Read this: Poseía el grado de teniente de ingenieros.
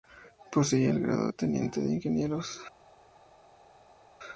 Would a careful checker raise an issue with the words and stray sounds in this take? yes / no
no